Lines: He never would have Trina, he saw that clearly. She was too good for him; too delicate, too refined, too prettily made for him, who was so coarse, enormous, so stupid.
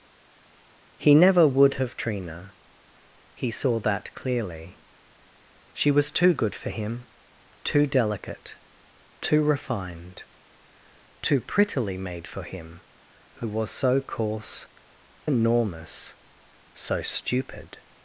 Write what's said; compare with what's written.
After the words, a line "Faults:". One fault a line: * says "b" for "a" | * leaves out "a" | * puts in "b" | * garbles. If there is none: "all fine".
He never would have Trina, he saw that clearly. She was too good for him; too delicate, too refined, too prettily made for him, who was so coarse, enormous, so stupid.
Faults:
all fine